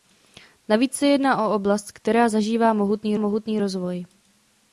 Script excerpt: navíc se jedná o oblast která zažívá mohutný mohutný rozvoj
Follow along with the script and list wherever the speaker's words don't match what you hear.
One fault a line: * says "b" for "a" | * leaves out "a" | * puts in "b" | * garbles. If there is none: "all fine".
all fine